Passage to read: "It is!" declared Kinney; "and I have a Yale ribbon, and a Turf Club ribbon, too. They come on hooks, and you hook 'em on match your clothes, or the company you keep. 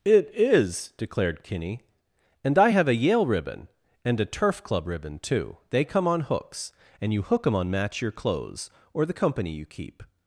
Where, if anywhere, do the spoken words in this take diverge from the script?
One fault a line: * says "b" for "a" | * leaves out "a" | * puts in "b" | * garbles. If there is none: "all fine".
all fine